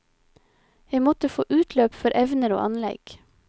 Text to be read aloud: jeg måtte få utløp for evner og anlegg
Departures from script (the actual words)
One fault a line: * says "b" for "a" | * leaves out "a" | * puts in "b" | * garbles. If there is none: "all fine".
all fine